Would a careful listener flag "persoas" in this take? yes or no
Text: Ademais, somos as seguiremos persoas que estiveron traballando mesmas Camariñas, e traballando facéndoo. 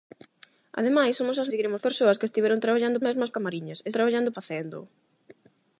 no